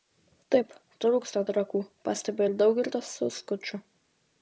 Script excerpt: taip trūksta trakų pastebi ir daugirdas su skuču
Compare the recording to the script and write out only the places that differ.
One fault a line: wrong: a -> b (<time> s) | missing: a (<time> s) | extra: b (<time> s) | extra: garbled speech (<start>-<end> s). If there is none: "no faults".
no faults